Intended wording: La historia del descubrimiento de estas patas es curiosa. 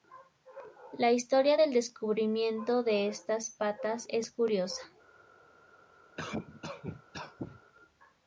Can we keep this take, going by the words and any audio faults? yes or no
no